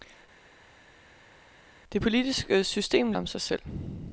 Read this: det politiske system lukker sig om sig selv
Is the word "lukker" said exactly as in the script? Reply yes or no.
no